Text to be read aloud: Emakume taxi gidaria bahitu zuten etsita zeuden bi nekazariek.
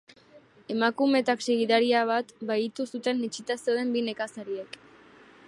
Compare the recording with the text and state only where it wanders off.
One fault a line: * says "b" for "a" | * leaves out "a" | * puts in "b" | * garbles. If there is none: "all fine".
* puts in "bat"